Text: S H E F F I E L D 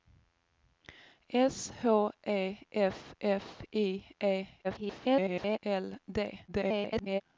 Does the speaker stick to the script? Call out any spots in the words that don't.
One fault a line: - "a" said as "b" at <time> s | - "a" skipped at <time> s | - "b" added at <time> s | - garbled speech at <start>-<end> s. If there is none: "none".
- garbled speech at 4.6-5.6 s
- garbled speech at 6.5-7.2 s